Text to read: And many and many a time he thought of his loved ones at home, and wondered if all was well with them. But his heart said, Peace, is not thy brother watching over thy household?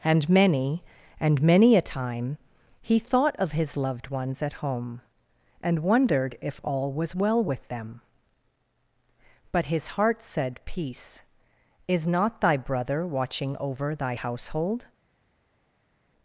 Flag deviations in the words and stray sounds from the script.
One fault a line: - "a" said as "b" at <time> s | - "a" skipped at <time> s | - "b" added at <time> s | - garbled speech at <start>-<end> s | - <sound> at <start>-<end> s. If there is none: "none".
none